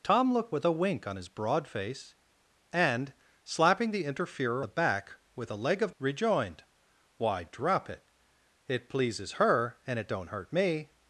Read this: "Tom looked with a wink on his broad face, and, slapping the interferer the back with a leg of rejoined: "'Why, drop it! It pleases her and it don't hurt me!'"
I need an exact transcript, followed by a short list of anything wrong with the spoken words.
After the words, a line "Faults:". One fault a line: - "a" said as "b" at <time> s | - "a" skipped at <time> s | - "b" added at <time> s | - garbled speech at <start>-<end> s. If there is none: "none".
"Tom looked with a wink on his broad face, and, slapping the interferer the back with a leg of rejoined: "'Why, drop it! It pleases her and it don't hurt me!'"
Faults:
none